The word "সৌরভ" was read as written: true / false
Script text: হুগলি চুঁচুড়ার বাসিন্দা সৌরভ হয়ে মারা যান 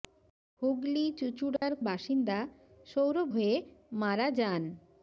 true